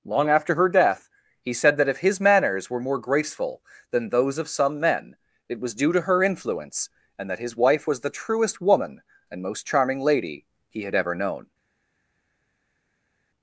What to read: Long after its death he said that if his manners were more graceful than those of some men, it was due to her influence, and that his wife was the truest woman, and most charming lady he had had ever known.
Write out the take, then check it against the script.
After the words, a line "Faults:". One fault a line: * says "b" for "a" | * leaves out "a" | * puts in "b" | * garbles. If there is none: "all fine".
Long after her death he said that if his manners were more graceful than those of some men, it was due to her influence, and that his wife was the truest woman, and most charming lady he had ever known.
Faults:
* says "her" for "its"
* leaves out "had"